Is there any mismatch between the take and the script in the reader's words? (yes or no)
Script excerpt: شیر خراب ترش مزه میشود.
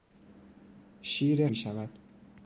yes